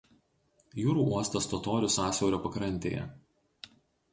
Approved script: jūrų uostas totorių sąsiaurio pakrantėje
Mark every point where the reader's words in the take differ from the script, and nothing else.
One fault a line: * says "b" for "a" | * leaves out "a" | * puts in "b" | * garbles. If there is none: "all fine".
all fine